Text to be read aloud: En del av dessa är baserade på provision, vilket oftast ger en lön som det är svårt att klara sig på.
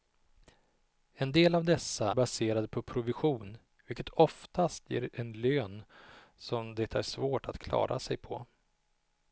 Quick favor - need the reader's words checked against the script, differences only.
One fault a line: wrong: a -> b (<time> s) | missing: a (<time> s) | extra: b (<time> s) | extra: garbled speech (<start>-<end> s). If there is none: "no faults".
missing: är (2.1 s)